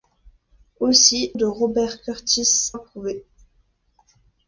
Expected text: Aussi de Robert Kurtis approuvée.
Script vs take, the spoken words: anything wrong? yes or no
no